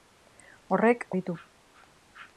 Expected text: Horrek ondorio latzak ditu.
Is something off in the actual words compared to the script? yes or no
yes